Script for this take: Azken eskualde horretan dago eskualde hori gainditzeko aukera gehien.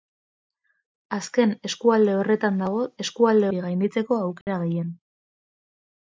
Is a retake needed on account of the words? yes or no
no